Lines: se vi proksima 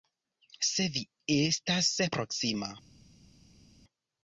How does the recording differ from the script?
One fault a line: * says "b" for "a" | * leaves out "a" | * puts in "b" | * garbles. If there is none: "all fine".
* puts in "estas"